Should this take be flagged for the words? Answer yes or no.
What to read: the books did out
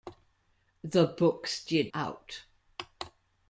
no